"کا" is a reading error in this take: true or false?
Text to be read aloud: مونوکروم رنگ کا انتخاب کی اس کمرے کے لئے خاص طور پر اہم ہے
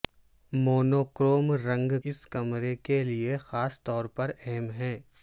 true